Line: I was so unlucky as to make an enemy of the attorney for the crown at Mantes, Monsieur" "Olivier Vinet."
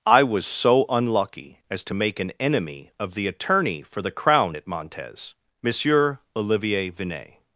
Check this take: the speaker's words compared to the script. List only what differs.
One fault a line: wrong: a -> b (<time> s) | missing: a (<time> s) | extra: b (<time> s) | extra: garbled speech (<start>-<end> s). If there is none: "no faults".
no faults